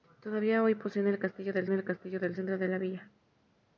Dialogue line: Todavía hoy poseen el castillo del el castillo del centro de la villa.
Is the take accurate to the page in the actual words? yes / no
yes